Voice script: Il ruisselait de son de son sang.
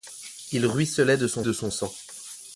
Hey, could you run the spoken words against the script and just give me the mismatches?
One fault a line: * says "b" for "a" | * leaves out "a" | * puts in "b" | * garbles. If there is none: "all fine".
all fine